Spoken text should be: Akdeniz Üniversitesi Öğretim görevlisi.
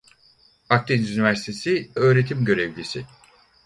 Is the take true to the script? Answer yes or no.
yes